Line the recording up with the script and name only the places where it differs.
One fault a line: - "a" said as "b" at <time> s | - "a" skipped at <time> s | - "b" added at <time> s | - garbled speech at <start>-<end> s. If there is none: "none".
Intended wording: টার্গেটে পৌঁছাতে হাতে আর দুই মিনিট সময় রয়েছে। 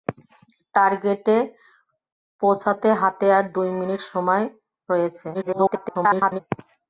- garbled speech at 5.3-6.4 s